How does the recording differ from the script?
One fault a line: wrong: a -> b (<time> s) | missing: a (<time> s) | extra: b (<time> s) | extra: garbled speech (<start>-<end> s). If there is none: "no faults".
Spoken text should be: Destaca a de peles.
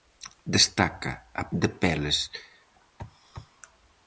no faults